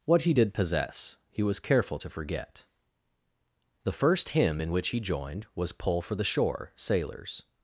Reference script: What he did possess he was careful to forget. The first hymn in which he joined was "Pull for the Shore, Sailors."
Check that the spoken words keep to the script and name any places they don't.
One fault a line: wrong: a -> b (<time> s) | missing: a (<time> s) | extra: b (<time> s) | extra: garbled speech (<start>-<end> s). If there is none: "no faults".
no faults